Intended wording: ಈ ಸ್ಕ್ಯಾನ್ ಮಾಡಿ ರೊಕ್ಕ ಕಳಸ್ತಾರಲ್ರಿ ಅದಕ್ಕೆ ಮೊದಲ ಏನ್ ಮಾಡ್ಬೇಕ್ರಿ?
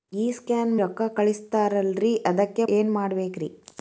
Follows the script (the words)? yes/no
no